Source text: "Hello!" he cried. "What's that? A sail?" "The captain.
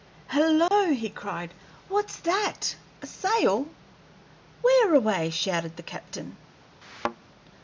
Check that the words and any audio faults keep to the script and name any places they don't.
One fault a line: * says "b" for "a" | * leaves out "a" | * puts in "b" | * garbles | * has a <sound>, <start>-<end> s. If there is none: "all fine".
* has a dropout, 0.7-0.7 s
* puts in "Where away shouted"
* has a thud, 6.8-7.2 s